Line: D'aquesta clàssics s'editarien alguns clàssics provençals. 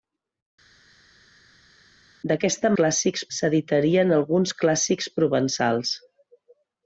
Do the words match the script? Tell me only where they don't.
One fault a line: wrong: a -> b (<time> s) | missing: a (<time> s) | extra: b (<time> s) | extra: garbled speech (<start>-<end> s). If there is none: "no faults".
no faults